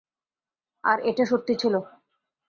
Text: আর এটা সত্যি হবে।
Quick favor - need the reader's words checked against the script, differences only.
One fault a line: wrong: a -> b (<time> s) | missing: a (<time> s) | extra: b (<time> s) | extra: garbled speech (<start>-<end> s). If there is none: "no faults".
wrong: হবে -> ছিল (1.6 s)